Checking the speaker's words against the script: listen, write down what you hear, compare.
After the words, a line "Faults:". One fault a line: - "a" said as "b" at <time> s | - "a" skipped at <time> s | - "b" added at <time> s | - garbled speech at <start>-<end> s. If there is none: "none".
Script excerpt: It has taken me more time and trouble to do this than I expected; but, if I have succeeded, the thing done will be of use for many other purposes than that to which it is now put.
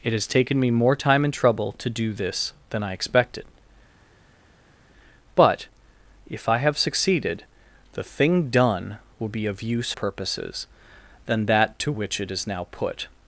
It has taken me more time and trouble to do this than I expected; but, if I have succeeded, the thing done will be of use purposes than that to which it is now put.
Faults:
- "for many other" skipped at 9.9 s